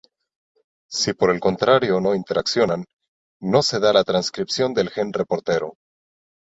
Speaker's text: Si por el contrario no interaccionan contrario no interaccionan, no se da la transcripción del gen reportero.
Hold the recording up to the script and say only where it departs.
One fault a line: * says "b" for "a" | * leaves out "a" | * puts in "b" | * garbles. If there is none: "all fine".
* leaves out "contrario no interaccionan"